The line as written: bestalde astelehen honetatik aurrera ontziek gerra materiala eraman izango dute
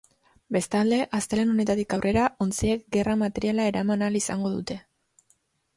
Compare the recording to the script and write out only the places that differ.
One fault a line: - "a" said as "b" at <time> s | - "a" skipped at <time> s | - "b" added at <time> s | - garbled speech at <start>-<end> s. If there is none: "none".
- "ahal" added at 4.1 s